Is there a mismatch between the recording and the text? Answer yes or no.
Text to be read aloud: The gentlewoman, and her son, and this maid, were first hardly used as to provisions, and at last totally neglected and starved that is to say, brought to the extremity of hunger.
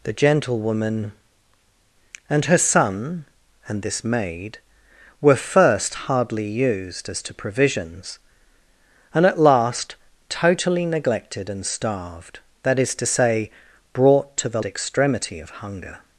no